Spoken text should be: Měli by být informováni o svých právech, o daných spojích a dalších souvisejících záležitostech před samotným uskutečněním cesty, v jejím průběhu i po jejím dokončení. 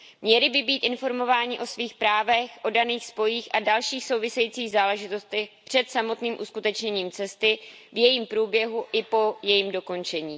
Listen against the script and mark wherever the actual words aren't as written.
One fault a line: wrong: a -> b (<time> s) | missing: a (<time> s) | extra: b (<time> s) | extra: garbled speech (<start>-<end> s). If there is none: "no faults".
no faults